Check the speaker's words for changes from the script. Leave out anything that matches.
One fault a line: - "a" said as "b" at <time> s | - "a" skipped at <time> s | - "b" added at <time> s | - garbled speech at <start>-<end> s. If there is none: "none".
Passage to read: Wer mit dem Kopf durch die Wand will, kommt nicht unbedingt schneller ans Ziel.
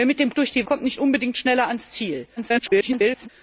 - "Kopf" skipped at 0.3 s
- "Wand will" skipped at 0.6 s
- garbled speech at 2.4-3.3 s